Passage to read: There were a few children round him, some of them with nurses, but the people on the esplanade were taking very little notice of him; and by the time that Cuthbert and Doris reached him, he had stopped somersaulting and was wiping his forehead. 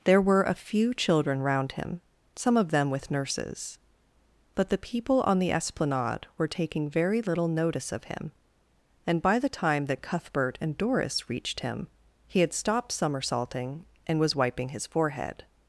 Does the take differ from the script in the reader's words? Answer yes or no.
no